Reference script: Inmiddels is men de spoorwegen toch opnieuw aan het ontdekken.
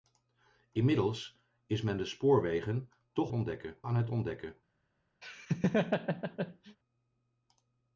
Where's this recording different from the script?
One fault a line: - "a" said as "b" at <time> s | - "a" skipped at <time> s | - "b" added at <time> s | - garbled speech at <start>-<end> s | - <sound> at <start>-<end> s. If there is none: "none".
- "opnieuw" said as "ontdekken" at 3.3 s
- laugh at 5.2-6.8 s